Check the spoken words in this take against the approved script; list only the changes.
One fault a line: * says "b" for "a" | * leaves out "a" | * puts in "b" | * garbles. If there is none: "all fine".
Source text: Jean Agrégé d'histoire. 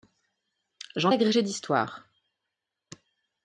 all fine